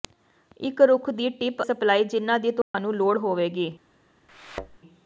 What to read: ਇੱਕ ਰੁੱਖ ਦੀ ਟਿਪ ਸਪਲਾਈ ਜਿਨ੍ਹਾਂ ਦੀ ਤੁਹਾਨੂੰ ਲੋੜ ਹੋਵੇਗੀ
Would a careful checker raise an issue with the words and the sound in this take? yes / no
yes